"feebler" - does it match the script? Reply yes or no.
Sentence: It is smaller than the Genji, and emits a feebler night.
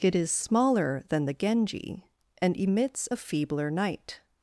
yes